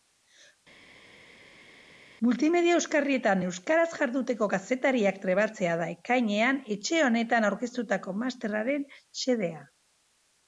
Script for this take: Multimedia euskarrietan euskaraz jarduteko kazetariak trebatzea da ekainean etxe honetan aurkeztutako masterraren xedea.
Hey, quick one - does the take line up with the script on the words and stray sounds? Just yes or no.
yes